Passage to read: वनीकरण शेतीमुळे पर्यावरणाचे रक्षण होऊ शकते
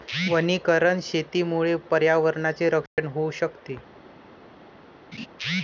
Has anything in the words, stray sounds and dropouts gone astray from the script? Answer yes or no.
yes